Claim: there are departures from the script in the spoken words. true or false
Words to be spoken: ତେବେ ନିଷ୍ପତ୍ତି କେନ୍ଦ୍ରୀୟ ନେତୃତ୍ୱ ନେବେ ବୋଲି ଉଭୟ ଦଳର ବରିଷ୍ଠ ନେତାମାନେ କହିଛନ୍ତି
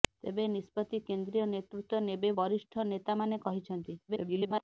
true